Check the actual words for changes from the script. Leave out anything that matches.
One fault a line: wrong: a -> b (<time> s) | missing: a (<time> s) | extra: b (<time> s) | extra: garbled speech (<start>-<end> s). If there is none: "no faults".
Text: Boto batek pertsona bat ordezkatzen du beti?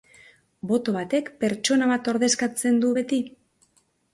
no faults